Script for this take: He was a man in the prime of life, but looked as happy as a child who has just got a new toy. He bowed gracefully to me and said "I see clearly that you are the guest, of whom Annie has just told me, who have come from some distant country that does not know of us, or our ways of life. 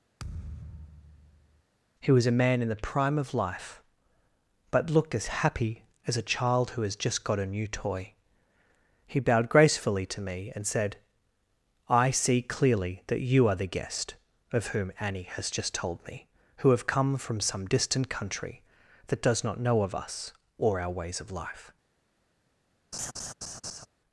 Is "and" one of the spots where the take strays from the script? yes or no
no